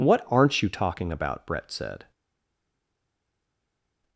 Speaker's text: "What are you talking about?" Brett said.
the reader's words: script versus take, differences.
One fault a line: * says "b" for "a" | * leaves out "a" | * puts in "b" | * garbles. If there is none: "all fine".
* says "aren't" for "are"